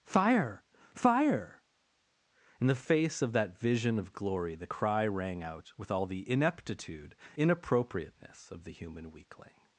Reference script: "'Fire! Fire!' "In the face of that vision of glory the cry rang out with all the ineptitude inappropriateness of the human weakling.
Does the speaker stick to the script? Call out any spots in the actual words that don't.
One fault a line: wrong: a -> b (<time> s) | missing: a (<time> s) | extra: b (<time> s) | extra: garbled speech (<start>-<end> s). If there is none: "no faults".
no faults